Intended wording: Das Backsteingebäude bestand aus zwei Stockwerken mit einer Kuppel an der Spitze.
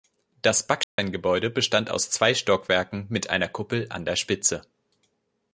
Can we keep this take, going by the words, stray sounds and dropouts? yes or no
no